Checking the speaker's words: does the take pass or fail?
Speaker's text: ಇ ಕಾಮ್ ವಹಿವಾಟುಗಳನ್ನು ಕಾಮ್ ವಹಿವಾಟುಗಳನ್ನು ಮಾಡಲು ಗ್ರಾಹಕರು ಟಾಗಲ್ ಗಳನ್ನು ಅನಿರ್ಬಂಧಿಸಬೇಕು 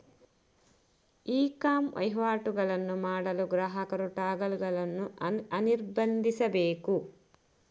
fail